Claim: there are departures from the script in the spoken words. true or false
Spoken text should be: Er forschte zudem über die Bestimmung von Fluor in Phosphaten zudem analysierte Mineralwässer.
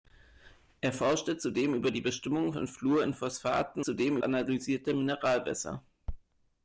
false